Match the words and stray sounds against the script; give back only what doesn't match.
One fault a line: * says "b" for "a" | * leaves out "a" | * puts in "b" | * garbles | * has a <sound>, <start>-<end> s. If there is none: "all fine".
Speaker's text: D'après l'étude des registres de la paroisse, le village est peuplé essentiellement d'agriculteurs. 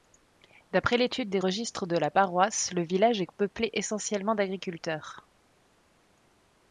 all fine